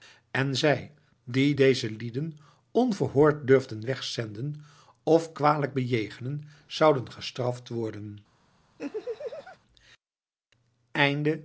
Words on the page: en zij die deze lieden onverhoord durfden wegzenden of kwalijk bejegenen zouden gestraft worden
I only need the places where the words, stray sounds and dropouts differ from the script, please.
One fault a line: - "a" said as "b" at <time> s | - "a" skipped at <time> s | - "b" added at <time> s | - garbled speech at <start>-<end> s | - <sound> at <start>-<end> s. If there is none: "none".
- laugh at 8.8-9.6 s